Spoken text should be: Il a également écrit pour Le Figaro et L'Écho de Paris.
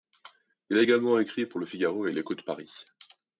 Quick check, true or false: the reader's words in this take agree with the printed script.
true